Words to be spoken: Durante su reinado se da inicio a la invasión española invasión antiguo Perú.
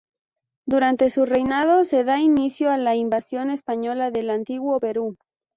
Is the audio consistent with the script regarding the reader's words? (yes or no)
no